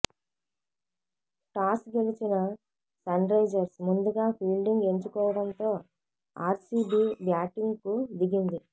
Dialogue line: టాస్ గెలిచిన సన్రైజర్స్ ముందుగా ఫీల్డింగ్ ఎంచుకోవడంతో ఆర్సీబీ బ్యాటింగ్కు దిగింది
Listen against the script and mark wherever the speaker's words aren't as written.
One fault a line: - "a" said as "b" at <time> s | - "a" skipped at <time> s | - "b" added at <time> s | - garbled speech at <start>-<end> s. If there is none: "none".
none